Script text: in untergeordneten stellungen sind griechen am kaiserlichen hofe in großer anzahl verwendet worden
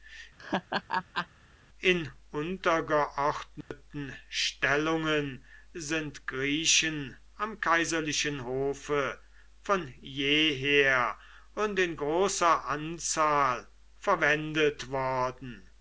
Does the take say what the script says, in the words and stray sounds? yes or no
no